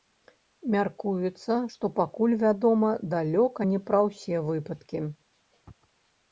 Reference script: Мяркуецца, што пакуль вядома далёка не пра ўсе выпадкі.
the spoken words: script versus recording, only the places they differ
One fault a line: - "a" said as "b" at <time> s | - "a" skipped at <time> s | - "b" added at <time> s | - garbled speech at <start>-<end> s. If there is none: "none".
none